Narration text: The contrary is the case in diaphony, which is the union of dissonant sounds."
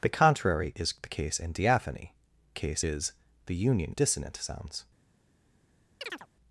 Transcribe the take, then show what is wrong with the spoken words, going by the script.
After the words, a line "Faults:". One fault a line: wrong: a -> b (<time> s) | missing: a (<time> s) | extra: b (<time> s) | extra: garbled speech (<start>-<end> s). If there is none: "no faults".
The contrary is the case in diaphony, case is the union dissonant sounds."
Faults:
wrong: which -> case (2.5 s)
missing: of (4.0 s)